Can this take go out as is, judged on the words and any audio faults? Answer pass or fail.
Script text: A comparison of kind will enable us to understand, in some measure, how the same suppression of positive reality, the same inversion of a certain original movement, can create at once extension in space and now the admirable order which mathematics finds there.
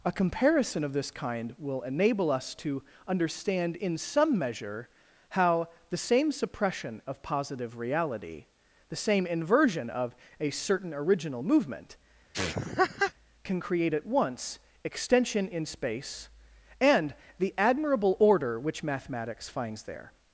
fail